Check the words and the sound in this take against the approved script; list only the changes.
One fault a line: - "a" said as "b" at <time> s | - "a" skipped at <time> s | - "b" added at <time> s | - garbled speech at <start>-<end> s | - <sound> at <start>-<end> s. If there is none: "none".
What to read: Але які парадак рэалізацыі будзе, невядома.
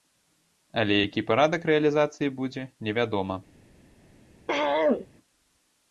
- throat clearing at 4.5-5.1 s